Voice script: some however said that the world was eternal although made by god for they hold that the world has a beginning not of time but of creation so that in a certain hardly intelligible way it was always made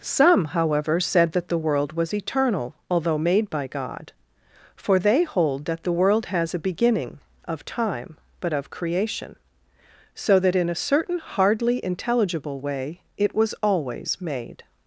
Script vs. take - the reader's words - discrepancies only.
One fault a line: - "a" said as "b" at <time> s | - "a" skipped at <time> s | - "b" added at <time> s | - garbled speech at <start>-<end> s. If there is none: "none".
- "not" skipped at 7.2 s